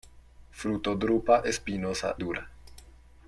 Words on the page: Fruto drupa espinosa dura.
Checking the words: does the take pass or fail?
pass